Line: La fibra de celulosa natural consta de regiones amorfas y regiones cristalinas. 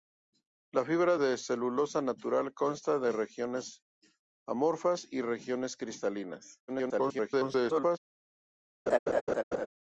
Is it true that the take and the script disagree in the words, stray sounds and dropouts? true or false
true